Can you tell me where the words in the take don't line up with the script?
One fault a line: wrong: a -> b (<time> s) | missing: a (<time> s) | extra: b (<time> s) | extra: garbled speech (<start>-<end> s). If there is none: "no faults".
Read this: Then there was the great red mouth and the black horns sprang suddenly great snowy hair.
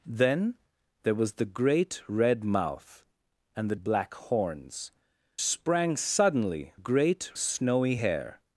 no faults